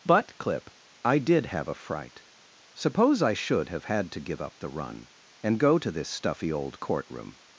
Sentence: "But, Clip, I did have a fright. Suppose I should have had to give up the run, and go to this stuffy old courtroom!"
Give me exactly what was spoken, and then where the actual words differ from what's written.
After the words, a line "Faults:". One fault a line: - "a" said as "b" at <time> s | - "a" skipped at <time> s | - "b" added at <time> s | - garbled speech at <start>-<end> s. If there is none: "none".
"But, Clip, I did have a fright. Suppose I should have had to give up the run, and go to this stuffy old courtroom!"
Faults:
none